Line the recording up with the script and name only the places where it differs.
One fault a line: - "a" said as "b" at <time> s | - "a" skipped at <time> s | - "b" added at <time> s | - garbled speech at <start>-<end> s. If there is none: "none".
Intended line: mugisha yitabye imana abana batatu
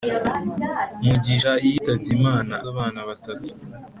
none